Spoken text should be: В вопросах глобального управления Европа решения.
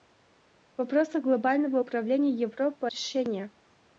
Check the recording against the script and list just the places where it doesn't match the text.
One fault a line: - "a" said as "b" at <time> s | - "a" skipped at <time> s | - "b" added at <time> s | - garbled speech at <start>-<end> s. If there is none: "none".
none